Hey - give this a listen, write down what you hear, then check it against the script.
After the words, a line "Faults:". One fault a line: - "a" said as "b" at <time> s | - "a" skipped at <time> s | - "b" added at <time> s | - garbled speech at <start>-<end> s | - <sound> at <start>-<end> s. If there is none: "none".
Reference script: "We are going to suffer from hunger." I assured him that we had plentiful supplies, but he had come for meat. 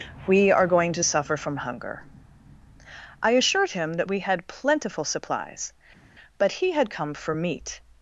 "We are going to suffer from hunger." I assured him that we had plentiful supplies, but he had come for meat.
Faults:
none